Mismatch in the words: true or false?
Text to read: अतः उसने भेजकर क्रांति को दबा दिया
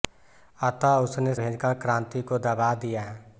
false